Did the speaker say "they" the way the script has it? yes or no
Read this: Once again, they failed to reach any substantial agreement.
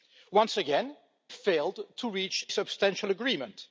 no